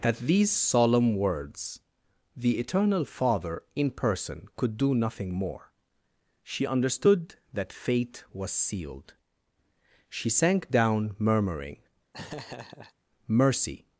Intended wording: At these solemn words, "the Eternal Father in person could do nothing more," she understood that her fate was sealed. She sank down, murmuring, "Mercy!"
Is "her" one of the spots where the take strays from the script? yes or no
yes